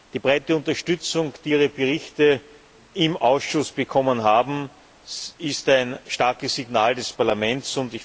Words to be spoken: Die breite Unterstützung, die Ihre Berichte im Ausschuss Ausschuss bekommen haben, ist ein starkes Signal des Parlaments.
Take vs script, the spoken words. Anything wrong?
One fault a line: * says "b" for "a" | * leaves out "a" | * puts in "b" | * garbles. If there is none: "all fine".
* leaves out "Ausschuss"